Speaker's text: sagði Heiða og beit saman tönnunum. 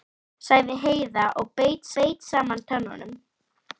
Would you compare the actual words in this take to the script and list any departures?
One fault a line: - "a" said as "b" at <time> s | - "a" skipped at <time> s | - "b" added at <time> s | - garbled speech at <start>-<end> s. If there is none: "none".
- "beit" added at 2.0 s